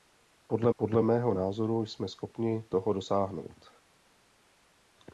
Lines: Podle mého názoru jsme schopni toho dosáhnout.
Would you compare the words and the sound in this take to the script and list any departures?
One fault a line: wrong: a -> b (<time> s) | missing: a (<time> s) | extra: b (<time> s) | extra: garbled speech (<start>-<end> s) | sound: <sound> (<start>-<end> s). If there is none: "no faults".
extra: podle (0.8 s)